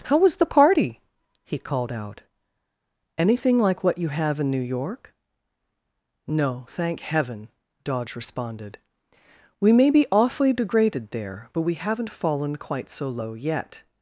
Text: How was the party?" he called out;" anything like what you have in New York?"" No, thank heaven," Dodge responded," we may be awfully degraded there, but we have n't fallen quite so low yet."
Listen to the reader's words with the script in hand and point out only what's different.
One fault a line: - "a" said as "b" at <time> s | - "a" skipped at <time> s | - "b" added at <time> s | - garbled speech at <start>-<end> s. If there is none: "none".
none